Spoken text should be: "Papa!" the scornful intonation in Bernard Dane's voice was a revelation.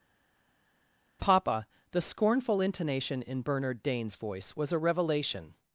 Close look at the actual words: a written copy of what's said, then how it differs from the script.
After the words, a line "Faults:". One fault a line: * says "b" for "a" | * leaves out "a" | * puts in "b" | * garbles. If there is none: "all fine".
"Papa!" the scornful intonation in Bernard Dane's voice was a revelation.
Faults:
all fine